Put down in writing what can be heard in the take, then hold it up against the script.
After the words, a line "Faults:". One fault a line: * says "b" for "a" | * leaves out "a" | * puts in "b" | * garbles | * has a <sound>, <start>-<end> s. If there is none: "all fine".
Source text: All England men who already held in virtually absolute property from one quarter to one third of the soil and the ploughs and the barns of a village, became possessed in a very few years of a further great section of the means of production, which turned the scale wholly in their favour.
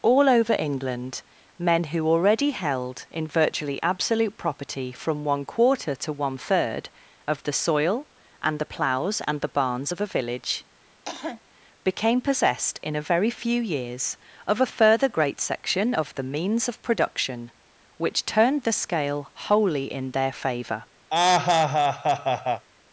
All over England men who already held in virtually absolute property from one quarter to one third of the soil and the ploughs and the barns of a village, became possessed in a very few years of a further great section of the means of production, which turned the scale wholly in their favour.
Faults:
* puts in "over"
* has a cough, 11.0-11.4 s
* has a laugh, 21.1-22.7 s